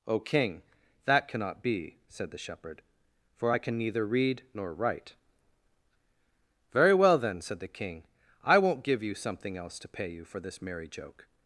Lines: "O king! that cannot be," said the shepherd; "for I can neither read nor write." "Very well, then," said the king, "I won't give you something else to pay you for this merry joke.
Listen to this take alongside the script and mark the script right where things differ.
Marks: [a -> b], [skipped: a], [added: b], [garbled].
"O king! that cannot be," said the shepherd; "for I can neither read nor write." "Very well, then," said the king, "I won't give you something else to pay you for this merry joke.